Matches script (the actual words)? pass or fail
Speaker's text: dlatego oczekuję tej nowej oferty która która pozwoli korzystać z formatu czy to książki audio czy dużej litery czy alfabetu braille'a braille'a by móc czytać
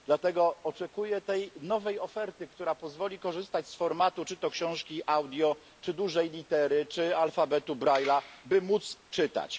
fail